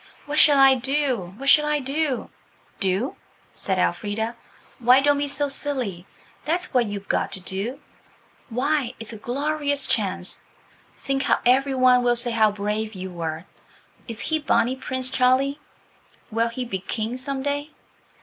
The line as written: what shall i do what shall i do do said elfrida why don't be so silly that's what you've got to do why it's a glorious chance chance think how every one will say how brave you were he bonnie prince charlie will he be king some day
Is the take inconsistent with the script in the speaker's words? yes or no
yes